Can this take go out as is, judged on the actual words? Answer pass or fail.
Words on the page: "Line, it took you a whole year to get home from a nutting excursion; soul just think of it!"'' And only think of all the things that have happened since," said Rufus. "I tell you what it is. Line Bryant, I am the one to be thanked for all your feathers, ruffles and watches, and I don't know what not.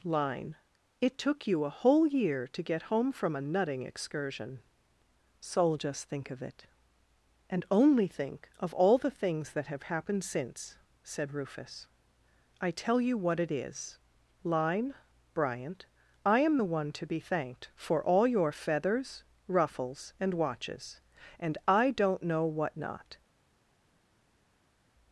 pass